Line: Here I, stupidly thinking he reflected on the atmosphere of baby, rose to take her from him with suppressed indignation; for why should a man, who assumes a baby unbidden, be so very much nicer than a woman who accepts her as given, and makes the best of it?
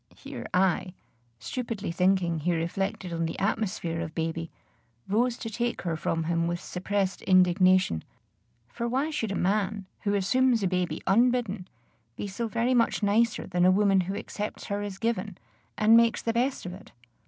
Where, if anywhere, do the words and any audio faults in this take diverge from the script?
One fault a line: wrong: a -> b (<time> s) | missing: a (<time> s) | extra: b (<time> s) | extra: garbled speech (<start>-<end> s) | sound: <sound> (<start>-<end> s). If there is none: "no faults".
no faults